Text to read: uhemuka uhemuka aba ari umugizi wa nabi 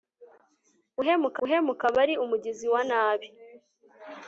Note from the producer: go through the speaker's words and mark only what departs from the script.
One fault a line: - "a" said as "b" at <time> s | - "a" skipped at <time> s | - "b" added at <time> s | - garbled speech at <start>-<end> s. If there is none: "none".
none